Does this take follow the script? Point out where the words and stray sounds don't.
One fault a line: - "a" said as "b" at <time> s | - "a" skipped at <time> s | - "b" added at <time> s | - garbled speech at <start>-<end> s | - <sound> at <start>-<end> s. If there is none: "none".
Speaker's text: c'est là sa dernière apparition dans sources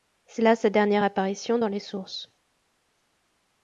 - "les" added at 1.7 s